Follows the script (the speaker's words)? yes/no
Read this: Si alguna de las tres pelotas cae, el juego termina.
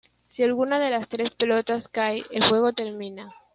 yes